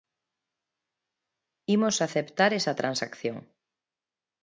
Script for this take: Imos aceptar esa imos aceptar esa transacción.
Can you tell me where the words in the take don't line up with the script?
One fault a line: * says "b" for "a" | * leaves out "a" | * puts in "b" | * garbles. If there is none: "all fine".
* leaves out "imos aceptar esa"